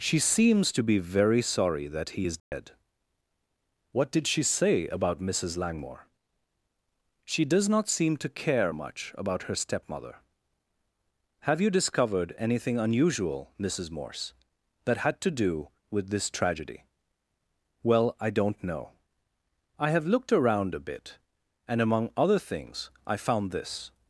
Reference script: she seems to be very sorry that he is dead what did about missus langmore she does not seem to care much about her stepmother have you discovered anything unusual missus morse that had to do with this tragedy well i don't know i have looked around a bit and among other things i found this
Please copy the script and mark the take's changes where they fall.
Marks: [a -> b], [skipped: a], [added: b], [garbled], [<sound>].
she seems to be very sorry that he is dead [dropout] what did [added: she say] about missus langmore she does not seem to care much about her stepmother have you discovered anything unusual missus morse that had to do with this tragedy well i don't know i have looked around a bit and among other things i found this